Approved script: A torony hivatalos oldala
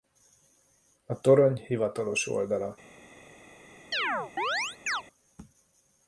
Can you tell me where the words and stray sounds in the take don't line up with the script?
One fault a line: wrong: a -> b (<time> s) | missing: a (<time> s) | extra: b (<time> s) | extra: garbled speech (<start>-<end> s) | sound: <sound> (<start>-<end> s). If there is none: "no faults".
sound: chirp (3.9-5.0 s)